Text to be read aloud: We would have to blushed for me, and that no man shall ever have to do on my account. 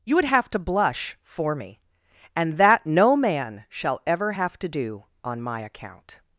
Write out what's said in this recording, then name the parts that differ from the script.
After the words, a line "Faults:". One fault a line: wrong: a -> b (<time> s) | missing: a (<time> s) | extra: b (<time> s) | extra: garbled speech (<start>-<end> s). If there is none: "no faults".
You would have to blush for me, and that no man shall ever have to do on my account.
Faults:
wrong: We -> You (0.0 s)
wrong: blushed -> blush (0.6 s)